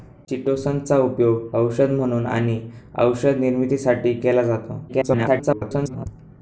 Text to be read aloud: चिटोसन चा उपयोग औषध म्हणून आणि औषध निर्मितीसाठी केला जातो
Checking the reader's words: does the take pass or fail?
fail